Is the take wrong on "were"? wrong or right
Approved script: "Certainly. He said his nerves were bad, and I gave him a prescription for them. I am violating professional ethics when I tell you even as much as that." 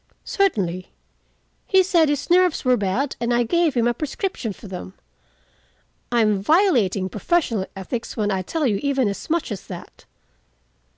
right